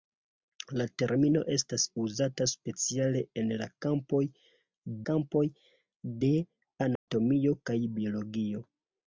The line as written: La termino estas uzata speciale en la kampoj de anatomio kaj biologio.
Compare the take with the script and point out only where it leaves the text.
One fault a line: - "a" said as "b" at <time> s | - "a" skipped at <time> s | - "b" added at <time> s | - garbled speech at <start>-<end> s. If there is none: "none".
- "kampoj" added at 5.1 s